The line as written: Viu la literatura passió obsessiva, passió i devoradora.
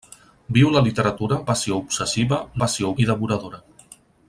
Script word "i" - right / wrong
right